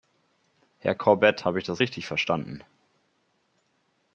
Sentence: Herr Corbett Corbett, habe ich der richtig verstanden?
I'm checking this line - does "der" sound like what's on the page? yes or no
no